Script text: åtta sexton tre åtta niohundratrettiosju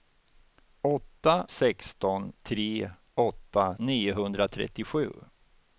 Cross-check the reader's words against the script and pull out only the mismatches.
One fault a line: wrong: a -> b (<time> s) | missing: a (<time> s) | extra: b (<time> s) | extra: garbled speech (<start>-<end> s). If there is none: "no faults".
no faults